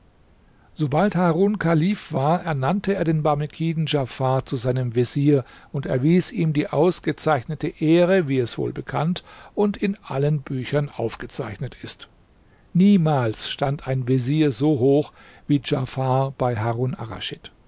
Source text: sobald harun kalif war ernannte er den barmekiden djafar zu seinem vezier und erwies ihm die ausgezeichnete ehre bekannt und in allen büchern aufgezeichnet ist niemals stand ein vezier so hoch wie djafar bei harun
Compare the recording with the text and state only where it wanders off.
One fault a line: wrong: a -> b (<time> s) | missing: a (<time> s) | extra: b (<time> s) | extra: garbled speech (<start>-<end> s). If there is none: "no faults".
extra: wie es wohl (8.3 s)